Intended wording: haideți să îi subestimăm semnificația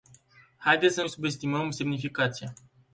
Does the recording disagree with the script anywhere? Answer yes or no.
no